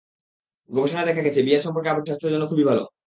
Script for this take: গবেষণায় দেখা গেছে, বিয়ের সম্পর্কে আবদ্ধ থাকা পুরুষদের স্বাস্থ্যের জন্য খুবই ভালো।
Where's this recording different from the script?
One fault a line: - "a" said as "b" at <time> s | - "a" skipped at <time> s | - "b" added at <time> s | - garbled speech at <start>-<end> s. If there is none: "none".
- "থাকা পুরুষদের" skipped at 2.1 s